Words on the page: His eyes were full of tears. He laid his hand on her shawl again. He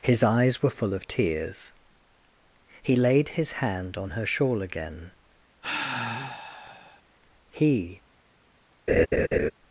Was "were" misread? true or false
false